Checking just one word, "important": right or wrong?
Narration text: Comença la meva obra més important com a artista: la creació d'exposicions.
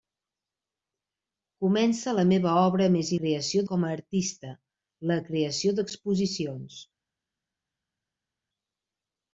wrong